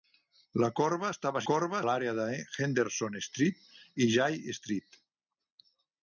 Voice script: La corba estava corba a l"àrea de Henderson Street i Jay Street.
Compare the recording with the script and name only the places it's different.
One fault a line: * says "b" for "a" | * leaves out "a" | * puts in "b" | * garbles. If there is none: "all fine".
all fine